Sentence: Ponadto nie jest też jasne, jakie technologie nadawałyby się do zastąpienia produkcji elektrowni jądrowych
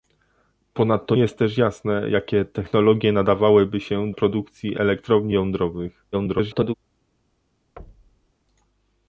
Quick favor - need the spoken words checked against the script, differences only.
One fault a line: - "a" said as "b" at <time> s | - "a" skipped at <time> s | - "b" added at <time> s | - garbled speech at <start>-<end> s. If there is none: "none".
- "nie" skipped at 1.1 s
- "do zastąpienia" skipped at 4.1 s
- garbled speech at 6.1-6.7 s